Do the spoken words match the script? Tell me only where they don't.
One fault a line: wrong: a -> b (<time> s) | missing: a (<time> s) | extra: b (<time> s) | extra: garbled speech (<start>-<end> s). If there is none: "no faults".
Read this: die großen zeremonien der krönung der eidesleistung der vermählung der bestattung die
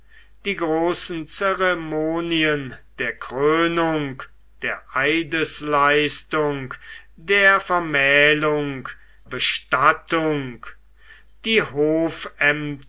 missing: der (8.9 s)